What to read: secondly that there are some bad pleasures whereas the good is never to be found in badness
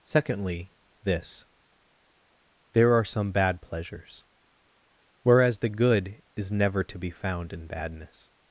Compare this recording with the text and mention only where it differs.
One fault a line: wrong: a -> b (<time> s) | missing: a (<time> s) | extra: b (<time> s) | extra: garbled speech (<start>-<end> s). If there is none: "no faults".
wrong: that -> this (1.0 s)